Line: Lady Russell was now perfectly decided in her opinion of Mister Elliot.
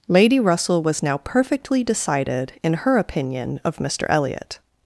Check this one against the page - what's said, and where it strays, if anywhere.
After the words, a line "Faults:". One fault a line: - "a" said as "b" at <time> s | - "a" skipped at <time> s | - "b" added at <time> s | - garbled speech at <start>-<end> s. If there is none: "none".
Lady Russell was now perfectly decided in her opinion of Mister Elliot.
Faults:
none